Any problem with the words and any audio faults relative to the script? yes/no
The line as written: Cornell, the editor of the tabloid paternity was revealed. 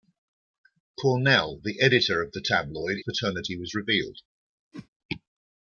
yes